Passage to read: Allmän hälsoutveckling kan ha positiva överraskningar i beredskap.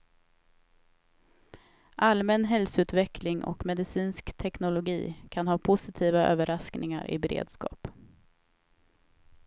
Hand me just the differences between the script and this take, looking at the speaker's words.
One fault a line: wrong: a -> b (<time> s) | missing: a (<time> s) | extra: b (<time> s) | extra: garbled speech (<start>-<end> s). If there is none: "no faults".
extra: och medicinsk teknologi (3.4 s)